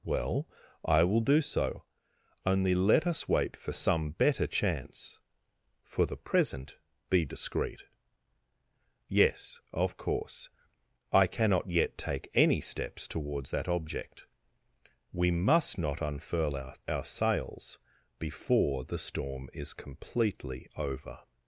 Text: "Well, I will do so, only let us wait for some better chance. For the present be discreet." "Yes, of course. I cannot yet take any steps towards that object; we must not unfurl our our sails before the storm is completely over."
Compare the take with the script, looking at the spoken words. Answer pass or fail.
pass